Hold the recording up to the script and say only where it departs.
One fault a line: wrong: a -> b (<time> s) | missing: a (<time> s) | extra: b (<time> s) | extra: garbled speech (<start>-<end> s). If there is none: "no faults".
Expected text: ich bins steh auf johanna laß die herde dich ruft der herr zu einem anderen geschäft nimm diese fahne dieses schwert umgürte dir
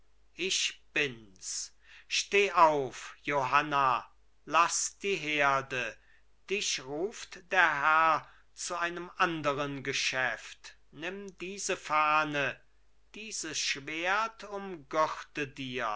no faults